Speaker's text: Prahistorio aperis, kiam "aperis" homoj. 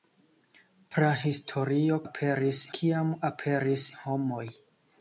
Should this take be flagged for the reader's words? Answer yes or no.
no